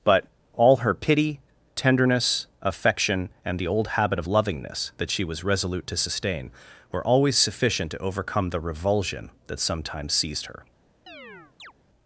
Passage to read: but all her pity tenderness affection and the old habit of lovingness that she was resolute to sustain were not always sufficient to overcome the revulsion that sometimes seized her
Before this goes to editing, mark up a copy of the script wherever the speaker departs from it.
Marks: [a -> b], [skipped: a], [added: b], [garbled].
but all her pity tenderness affection and the old habit of lovingness that she was resolute to sustain were [skipped: not] always sufficient to overcome the revulsion that sometimes seized her